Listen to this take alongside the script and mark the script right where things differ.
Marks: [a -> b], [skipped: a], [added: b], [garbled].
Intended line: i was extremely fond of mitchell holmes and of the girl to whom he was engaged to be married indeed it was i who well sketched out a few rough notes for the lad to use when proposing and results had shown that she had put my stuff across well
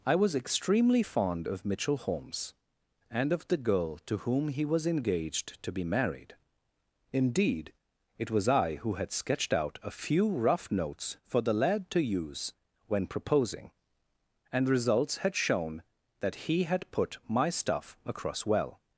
i was extremely fond of mitchell holmes and of the girl to whom he was engaged to be married indeed it was i who [well -> had] sketched out a few rough notes for the lad to use when proposing and results had shown that [she -> he] had put my stuff across well